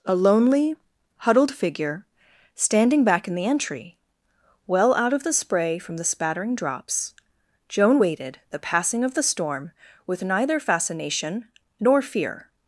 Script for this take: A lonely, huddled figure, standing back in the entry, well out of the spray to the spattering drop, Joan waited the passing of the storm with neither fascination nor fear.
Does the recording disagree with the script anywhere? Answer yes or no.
yes